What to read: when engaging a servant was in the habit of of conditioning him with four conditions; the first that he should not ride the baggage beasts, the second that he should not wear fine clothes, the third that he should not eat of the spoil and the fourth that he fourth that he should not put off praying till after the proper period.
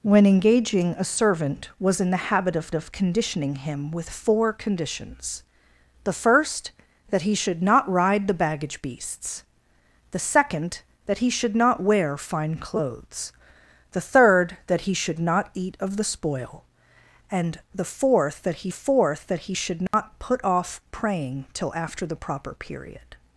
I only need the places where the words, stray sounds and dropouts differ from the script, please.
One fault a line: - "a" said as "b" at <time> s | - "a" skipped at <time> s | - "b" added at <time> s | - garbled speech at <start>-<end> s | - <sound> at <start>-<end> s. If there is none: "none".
- dropout at 19.9-19.9 s